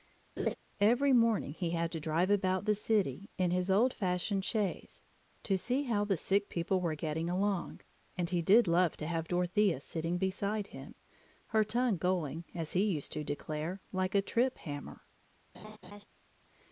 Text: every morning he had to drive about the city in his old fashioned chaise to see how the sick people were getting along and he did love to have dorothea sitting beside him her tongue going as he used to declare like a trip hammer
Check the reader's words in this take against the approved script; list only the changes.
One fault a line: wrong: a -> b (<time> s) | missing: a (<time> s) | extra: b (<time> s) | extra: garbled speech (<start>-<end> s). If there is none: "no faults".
no faults